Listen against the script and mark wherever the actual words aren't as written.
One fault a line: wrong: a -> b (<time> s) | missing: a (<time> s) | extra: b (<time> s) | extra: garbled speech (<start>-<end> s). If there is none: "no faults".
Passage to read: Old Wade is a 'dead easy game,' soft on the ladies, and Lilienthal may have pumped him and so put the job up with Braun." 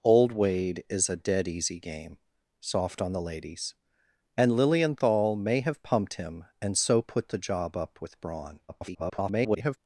extra: garbled speech (8.7-9.8 s)